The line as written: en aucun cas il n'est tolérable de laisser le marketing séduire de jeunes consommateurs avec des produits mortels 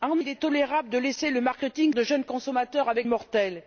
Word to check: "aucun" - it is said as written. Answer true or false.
false